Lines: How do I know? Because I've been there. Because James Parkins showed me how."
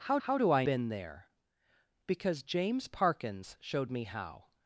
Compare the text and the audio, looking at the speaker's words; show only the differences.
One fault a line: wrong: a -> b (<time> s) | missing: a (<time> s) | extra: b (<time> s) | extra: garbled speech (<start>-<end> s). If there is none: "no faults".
extra: how (0.2 s)
missing: know Because I've (0.7 s)